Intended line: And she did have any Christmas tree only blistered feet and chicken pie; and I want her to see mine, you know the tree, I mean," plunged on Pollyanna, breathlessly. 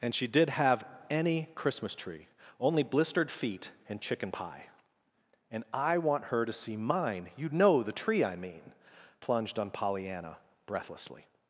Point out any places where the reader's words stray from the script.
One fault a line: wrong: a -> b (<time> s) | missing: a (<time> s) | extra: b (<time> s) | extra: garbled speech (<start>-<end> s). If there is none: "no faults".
no faults